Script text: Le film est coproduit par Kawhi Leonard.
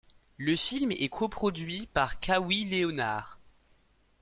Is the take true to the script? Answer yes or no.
yes